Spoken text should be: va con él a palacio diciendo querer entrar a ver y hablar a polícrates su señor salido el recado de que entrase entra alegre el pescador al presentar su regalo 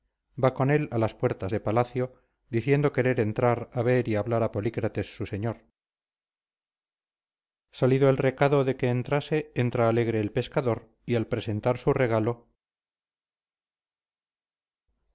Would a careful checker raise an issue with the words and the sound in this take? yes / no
yes